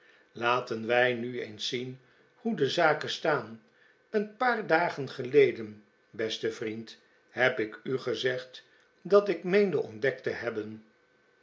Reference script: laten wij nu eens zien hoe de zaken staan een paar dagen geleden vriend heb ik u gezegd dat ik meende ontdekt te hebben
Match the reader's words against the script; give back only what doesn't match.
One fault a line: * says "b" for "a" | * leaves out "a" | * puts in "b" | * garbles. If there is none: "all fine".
* puts in "beste"